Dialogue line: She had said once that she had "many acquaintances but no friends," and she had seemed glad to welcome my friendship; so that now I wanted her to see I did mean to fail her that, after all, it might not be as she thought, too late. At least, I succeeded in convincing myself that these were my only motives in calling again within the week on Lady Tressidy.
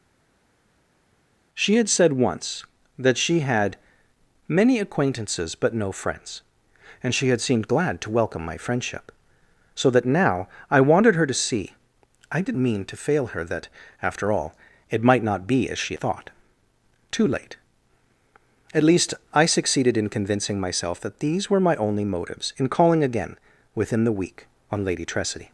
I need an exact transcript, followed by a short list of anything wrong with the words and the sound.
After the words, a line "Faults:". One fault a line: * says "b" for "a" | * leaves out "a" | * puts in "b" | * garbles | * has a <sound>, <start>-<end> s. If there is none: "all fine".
She had said once that she had "many acquaintances but no friends," and she had seemed glad to welcome my friendship; so that now I wanted her to see I did mean to fail her that, after all, it might not be as she thought, too late. At least, I succeeded in convincing myself that these were my only motives in calling again within the week on Lady Tressidy.
Faults:
all fine